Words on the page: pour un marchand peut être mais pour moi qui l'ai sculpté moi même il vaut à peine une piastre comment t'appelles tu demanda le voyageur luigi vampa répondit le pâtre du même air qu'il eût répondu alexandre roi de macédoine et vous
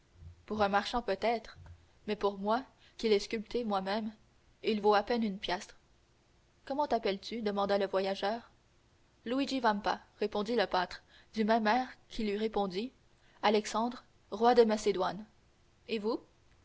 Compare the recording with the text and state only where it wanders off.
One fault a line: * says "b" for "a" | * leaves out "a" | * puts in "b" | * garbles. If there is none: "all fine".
all fine